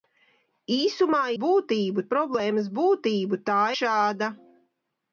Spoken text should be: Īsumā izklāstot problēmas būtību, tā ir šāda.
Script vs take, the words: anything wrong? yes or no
yes